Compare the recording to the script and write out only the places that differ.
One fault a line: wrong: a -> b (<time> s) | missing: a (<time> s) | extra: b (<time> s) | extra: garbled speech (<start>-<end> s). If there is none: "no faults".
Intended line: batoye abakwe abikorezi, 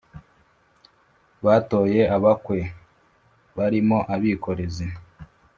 extra: barimo (3.6 s)